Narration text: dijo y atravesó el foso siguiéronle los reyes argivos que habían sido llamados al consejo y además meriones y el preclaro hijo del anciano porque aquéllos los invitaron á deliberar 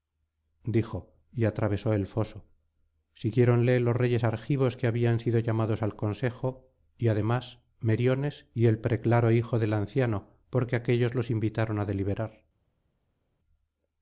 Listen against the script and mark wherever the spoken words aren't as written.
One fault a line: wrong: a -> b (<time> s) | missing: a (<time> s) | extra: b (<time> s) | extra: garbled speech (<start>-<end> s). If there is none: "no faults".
no faults